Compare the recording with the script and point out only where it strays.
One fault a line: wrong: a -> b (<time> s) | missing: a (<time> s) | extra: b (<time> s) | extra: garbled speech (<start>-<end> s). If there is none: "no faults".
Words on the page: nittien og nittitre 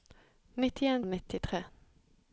no faults